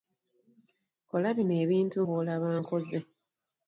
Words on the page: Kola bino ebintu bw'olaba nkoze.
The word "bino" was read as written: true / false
true